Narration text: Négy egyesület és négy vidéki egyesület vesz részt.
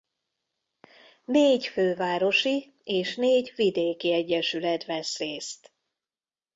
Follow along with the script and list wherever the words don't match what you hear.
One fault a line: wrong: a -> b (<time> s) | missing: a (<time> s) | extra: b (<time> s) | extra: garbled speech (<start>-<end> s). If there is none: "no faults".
wrong: egyesület -> fővárosi (1.7 s)